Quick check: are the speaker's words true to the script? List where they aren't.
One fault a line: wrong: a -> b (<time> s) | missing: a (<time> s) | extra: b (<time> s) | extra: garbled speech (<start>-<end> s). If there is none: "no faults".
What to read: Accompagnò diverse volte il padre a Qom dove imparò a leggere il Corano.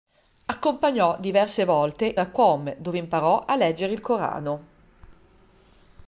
missing: il padre (2.1 s)